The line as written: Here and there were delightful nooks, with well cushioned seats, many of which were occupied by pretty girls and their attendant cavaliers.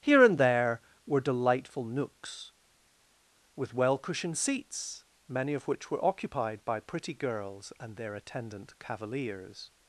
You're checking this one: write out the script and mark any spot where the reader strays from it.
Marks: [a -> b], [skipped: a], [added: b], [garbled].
Here and there were delightful nooks, with well cushioned seats, many of which were occupied by pretty girls and their attendant cavaliers.